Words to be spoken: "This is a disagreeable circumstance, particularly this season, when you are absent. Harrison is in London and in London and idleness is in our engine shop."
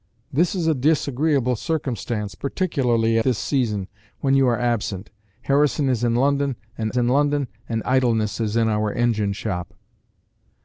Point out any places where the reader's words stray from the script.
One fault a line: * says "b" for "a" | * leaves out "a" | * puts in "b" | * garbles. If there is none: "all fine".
all fine